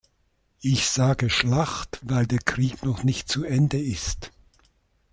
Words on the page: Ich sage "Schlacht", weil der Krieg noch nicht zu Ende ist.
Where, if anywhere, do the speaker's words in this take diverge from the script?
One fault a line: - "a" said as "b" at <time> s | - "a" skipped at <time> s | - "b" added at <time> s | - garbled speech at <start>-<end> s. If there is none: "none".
none